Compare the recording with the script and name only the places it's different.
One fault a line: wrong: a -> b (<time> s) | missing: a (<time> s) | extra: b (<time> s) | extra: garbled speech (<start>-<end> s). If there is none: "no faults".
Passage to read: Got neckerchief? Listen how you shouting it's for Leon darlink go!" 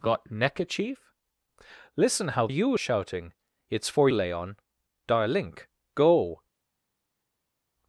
no faults